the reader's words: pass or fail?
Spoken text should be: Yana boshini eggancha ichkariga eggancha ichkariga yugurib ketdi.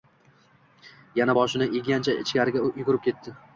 fail